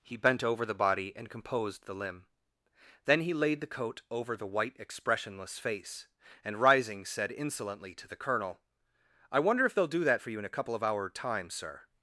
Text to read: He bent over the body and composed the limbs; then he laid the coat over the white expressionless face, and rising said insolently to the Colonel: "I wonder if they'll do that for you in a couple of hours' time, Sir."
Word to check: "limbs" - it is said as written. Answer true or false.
false